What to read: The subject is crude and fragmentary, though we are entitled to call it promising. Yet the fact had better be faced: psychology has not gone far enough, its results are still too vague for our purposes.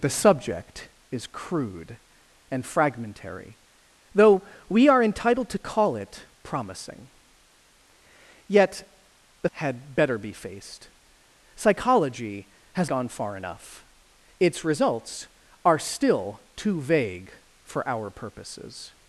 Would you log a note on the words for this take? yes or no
yes